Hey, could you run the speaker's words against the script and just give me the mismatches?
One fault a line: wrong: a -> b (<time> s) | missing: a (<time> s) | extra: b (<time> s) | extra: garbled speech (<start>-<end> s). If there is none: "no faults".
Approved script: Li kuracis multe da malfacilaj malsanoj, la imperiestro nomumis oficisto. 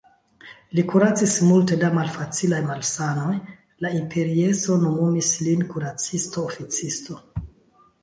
extra: lin kuracisto (5.5 s)